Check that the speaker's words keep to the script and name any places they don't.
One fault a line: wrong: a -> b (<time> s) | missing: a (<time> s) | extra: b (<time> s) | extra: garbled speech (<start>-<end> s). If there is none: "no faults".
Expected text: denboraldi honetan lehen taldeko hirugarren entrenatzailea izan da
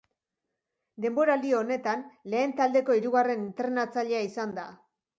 no faults